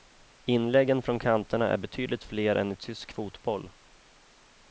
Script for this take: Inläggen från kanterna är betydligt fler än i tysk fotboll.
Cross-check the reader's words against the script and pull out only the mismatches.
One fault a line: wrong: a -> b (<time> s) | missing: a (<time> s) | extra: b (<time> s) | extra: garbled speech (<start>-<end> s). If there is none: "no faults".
no faults